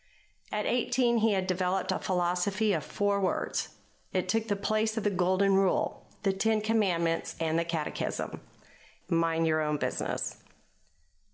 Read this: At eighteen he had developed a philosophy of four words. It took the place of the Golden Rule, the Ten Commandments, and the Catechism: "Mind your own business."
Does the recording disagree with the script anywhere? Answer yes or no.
no